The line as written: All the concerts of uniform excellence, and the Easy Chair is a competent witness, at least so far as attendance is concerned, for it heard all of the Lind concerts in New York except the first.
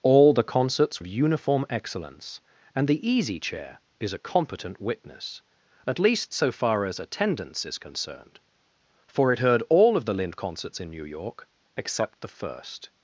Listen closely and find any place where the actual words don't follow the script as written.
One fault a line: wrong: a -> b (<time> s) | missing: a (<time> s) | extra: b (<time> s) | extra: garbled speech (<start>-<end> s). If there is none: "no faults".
no faults